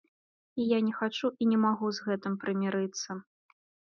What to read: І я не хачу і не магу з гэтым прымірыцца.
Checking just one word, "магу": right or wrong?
right